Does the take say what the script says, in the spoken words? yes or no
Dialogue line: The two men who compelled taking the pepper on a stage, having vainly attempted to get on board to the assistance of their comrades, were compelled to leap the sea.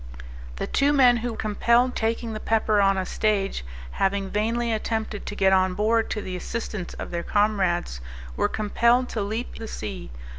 yes